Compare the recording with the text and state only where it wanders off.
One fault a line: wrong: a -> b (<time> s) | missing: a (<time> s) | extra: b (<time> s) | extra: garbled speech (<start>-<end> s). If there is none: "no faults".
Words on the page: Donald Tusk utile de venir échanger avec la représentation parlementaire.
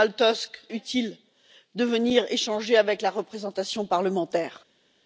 no faults